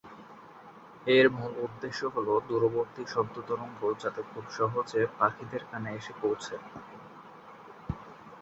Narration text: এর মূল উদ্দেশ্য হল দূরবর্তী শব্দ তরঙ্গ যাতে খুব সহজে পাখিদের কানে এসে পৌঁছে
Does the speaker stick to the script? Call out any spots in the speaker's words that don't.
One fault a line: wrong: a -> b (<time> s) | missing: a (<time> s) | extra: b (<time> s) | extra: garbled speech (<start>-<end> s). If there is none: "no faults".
no faults